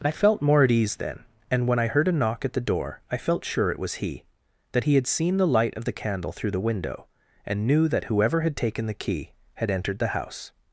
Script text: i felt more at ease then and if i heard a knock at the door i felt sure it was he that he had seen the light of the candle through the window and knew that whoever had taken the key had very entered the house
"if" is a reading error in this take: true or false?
true